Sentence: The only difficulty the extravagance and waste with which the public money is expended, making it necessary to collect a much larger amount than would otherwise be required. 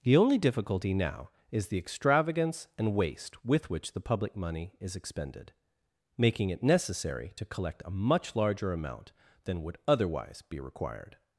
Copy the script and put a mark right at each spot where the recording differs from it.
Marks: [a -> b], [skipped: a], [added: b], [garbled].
The only difficulty [added: now is] the extravagance and waste with which the public money is expended, making it necessary to collect a much larger amount than would otherwise be required.